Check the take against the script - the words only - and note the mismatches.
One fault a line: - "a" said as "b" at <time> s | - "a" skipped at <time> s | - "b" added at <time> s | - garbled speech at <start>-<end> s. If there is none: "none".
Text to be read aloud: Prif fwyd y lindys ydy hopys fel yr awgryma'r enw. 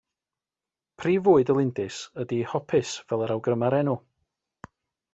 none